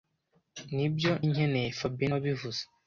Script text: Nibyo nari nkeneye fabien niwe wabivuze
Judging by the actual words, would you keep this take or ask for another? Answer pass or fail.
fail